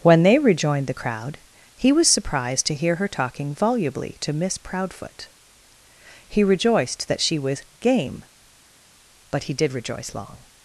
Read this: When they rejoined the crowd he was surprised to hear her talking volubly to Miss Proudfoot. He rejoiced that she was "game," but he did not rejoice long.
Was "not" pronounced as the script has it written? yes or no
no